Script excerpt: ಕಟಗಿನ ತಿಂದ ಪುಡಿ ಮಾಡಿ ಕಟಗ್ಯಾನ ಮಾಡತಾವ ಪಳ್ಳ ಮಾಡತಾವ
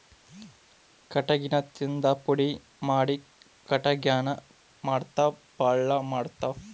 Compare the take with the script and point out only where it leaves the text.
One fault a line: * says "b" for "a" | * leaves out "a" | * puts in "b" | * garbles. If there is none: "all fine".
all fine